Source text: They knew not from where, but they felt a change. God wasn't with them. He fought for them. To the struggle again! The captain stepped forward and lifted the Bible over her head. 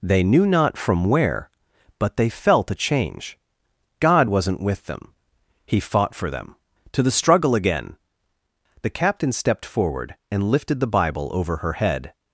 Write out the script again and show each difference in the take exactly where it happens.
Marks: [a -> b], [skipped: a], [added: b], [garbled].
They knew not from where, but they felt a change. God wasn't with them. He fought for them. To the struggle again! The captain stepped forward and lifted the Bible over her head.